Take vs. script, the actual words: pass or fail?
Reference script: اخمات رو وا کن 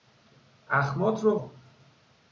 fail